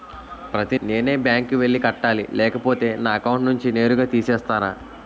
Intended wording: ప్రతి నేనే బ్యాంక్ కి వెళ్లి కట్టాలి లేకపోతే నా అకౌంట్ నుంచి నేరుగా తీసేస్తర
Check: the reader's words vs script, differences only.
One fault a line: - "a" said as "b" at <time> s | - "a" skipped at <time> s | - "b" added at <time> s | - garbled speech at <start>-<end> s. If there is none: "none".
none